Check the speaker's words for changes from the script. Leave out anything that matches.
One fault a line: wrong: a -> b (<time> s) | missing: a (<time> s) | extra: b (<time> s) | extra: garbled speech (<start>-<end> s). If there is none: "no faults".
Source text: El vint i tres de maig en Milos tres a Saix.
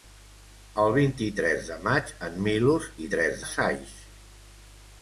no faults